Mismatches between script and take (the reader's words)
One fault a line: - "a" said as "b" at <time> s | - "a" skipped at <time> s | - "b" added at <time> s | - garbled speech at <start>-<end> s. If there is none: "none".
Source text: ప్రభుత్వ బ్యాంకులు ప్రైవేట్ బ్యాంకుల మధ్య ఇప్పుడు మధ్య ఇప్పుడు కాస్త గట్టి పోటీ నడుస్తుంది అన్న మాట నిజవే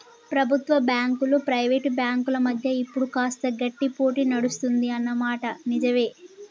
- "మధ్య ఇప్పుడు" skipped at 3.1 s